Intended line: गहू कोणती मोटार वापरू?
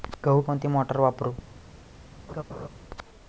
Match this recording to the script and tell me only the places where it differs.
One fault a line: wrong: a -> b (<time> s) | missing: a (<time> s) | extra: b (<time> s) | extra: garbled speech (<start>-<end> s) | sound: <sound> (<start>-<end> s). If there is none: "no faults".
sound: laugh (2.3-2.7 s)